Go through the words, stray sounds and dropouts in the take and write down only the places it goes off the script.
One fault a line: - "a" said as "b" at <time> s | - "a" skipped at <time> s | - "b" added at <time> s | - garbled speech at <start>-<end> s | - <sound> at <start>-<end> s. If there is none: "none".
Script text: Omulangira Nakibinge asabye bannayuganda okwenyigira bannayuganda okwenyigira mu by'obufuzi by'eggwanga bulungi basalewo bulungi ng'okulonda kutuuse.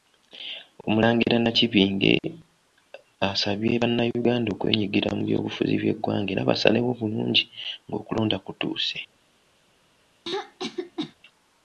- "bannayuganda okwenyigira" skipped at 5.1 s
- "bulungi" said as "era" at 6.3 s
- throat clearing at 10.3-11.2 s